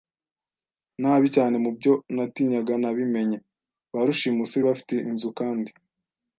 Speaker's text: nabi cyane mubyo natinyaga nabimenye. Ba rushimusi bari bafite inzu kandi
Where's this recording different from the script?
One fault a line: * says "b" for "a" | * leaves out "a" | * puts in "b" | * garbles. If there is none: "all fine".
* leaves out "bari"